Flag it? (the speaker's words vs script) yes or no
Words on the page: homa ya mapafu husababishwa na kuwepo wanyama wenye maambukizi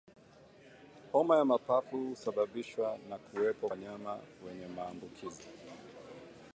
no